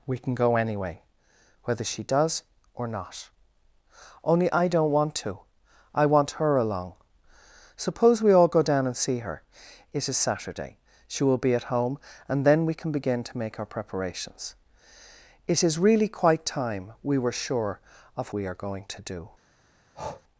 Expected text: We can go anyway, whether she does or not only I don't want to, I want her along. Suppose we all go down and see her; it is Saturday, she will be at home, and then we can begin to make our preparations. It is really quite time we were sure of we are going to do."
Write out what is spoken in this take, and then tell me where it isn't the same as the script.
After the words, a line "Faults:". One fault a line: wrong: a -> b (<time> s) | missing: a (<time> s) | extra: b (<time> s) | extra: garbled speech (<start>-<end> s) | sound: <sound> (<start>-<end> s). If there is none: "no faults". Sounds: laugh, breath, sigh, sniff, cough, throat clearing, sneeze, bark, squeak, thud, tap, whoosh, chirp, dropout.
We can go anyway, whether she does or not only I don't want to, I want her along. Suppose we all go down and see her; it is Saturday, she will be at home, and then we can begin to make our preparations. It is really quite time we were sure of we are going to do."
Faults:
sound: breath (19.9-20.2 s)